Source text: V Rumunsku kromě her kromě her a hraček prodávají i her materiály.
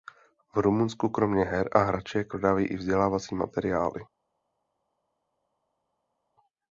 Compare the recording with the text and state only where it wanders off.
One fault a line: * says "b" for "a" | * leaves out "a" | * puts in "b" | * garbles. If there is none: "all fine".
* leaves out "kromě her"
* says "vzdělávací" for "her"